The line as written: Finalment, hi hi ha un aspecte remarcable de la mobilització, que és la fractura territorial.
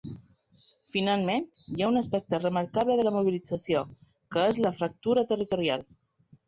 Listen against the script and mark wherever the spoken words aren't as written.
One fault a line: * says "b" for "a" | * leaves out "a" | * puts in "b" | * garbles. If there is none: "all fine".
* leaves out "hi"